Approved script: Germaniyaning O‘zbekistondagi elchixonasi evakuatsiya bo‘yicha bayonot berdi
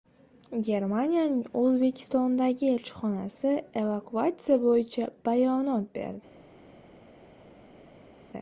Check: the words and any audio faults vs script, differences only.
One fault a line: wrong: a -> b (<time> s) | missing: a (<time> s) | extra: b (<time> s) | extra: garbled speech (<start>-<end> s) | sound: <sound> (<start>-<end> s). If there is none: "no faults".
no faults